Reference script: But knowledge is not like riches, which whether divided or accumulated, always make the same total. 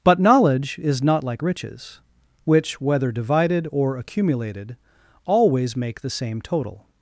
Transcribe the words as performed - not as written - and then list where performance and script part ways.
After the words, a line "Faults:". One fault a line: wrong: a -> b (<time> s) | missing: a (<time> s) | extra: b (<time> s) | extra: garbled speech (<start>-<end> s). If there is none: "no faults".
But knowledge is not like riches, which whether divided or accumulated, always make the same total.
Faults:
no faults